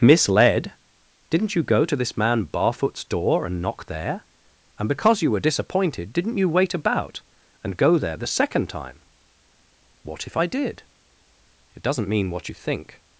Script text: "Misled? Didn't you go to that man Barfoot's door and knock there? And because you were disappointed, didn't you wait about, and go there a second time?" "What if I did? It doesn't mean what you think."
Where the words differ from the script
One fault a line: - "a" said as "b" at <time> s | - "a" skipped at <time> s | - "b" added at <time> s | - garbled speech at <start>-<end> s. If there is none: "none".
- "that" said as "this" at 1.9 s
- "a" said as "the" at 8.2 s